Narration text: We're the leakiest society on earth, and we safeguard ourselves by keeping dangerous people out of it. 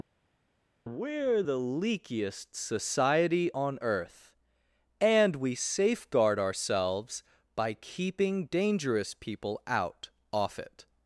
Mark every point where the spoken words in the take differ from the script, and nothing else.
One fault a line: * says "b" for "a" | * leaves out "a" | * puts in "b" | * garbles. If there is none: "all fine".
* says "off" for "of"